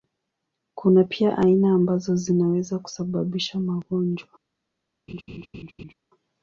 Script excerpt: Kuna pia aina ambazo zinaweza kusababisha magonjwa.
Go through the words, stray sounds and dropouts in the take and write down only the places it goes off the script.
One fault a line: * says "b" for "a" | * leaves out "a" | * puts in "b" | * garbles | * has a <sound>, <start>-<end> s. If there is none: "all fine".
* has a laugh, 5.1-5.9 s